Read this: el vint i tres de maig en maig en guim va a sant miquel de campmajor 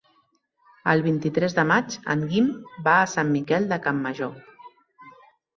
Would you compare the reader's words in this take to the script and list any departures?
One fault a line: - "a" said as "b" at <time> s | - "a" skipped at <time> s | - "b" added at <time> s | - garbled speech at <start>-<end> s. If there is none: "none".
- "maig en" skipped at 2.2 s